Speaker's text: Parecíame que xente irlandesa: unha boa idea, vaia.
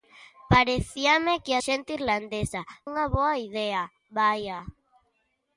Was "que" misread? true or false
false